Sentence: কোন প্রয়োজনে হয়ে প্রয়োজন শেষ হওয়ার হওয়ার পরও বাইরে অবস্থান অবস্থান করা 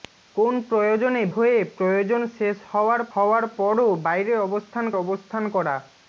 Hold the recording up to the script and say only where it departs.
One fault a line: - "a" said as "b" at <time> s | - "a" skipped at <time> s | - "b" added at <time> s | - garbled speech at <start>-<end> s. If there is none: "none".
none